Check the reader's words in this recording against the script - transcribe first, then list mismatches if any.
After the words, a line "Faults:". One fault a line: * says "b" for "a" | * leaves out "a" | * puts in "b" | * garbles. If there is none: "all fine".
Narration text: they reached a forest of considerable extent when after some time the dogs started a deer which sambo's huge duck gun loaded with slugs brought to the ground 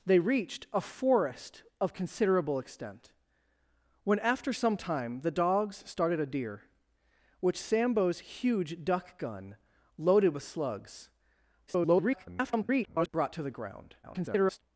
they reached a forest of considerable extent when after some time the dogs started a deer which sambo's huge duck gun loaded with slugs [garbled] brought to the ground [garbled]
Faults:
* garbles
* garbles